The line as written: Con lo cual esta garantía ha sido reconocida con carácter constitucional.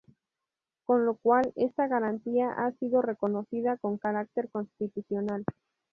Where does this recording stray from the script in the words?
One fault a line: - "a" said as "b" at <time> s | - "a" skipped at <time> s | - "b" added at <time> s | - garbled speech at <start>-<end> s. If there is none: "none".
none